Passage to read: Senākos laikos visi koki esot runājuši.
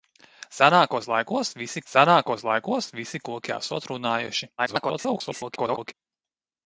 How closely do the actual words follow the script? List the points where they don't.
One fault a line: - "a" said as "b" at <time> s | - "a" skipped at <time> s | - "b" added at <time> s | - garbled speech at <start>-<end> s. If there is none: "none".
- "senākos laikos visi" added at 1.9 s
- garbled speech at 4.6-5.9 s